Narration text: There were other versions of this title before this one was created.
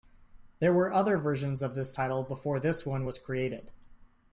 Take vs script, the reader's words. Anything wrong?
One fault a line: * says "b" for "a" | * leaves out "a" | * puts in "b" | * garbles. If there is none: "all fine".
all fine